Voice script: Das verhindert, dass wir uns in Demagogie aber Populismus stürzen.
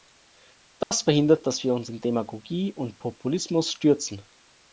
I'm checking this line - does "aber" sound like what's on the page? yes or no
no